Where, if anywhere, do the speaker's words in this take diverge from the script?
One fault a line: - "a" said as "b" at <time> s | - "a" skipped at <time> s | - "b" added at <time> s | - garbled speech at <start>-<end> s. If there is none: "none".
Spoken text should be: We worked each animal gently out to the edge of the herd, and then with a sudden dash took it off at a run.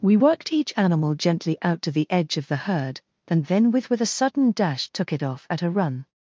- "with" added at 3.9 s